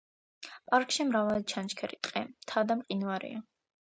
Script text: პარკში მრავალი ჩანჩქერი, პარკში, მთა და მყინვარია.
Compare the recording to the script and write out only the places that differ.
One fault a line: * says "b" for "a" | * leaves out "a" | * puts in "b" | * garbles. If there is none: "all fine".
* says "ტყე" for "პარკში"